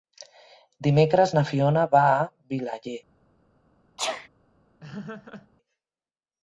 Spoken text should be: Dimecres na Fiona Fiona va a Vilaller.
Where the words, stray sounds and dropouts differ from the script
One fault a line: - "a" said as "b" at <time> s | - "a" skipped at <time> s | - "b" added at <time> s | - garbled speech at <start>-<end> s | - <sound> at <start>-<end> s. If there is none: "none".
- "Fiona" skipped at 1.8 s
- sneeze at 4.0-4.3 s
- laugh at 4.8-5.5 s